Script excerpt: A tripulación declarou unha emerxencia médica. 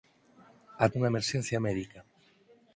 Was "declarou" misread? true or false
true